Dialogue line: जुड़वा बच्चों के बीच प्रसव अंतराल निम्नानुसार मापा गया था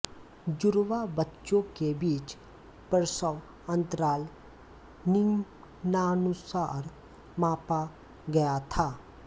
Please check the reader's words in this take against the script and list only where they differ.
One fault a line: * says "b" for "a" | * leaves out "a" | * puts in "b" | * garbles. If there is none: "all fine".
all fine